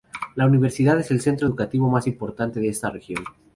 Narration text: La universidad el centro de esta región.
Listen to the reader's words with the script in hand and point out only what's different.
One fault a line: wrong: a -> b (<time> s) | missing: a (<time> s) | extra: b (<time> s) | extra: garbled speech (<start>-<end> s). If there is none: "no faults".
extra: es (1.0 s)
extra: educativo más importante (1.5 s)